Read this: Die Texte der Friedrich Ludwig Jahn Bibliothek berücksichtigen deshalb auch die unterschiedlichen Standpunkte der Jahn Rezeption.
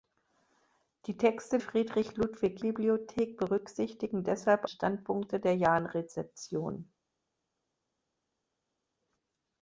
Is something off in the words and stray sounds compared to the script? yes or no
yes